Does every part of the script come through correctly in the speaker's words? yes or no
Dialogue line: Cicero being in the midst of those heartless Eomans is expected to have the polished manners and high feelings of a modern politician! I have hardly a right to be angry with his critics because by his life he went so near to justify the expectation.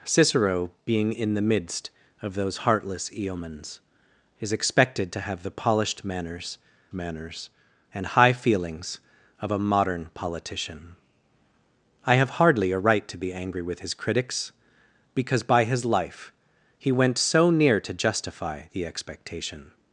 no